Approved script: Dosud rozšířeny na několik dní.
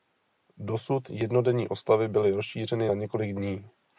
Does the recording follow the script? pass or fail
fail